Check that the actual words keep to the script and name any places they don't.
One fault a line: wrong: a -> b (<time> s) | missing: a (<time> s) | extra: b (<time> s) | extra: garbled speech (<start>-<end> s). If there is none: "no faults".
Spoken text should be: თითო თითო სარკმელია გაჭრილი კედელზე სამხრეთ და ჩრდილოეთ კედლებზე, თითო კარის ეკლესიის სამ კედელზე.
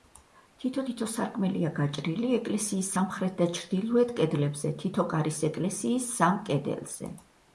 wrong: კედელზე -> ეკლესიის (2.4 s)